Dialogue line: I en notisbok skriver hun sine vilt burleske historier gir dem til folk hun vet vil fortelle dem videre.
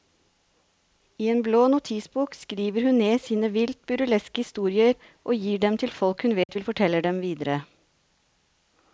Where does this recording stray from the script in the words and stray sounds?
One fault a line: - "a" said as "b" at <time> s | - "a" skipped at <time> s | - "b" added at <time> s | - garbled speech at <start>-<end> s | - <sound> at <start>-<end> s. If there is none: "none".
- "blå" added at 1.5 s
- "ned" added at 3.0 s
- "og" added at 5.2 s
- dropout at 6.4-6.5 s